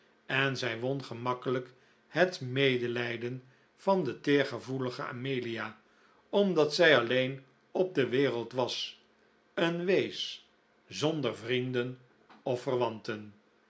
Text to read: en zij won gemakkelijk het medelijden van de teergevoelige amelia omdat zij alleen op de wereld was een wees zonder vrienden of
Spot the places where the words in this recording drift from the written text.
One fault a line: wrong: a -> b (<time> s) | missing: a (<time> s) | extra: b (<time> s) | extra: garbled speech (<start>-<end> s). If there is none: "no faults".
no faults